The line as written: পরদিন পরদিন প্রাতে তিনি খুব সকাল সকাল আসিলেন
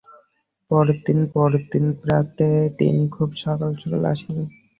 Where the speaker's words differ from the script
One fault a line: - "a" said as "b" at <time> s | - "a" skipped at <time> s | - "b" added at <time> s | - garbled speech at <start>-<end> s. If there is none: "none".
none